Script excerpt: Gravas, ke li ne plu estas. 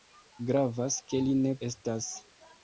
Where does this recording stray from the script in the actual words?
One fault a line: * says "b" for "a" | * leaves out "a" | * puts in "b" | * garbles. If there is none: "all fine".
* leaves out "plu"